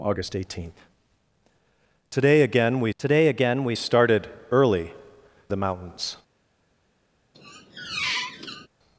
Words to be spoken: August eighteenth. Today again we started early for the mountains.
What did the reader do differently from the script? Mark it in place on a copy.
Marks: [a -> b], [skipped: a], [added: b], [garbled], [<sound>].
August eighteenth. Today again we [added: today again we] started early [skipped: for] the mountains. [squeak]